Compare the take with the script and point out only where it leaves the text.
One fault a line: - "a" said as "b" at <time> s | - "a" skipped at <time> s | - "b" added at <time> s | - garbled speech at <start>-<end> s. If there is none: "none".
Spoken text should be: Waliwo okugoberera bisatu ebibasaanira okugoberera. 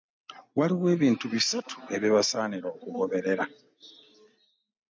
- "okugoberera" said as "ebintu" at 0.9 s